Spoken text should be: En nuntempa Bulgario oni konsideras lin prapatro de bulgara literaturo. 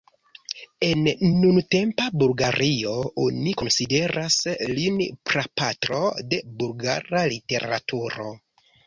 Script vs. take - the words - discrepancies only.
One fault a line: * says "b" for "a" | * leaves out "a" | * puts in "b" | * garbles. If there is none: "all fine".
all fine